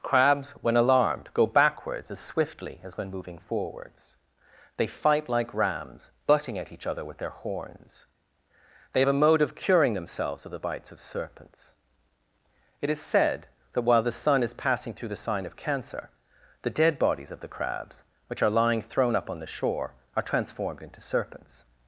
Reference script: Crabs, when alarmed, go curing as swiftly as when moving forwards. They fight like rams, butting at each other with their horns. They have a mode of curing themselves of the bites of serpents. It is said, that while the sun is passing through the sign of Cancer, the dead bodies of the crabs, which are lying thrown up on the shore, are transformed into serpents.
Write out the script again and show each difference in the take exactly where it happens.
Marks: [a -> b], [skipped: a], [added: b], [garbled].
Crabs, when alarmed, go [curing -> backwards] as swiftly as when moving forwards. They fight like rams, butting at each other with their horns. They have a mode of curing themselves of the bites of serpents. It is said, that while the sun is passing through the sign of Cancer, the dead bodies of the crabs, which are lying thrown up on the shore, are transformed into serpents.